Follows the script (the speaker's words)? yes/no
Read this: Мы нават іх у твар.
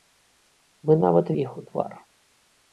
yes